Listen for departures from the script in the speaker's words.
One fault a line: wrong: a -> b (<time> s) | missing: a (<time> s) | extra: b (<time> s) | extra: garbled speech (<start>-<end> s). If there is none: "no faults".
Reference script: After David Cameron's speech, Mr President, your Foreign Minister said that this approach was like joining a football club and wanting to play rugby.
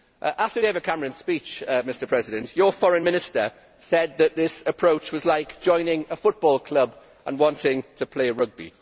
no faults